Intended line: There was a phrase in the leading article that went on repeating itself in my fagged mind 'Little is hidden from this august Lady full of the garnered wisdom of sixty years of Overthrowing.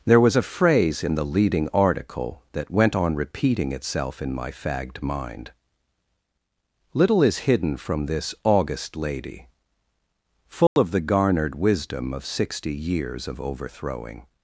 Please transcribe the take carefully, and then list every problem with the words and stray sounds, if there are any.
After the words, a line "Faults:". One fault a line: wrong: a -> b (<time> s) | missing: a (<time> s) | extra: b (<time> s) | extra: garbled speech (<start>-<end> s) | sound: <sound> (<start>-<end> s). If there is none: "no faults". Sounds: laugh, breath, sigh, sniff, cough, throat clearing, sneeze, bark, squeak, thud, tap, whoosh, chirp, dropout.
There was a phrase in the leading article that went on repeating itself in my fagged mind 'Little is hidden from this august Lady full of the garnered wisdom of sixty years of Overthrowing.
Faults:
sound: dropout (10.7-10.8 s)